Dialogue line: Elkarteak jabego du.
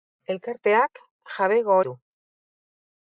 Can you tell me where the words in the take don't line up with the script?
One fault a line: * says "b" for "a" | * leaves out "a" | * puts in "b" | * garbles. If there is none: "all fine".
all fine